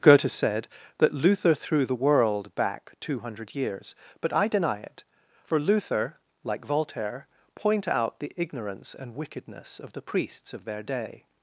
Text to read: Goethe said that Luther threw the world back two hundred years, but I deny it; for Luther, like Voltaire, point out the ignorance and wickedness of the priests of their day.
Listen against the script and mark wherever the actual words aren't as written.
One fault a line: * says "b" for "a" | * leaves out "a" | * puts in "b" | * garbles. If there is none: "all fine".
all fine